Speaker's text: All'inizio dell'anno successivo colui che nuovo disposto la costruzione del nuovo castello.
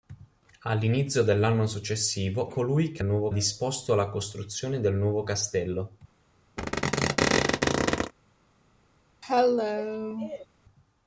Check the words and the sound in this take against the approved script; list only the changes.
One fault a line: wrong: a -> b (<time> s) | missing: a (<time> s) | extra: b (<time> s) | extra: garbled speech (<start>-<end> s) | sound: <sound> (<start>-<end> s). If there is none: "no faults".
sound: squeak (6.6-8.1 s)
sound: cough (9.2-10.5 s)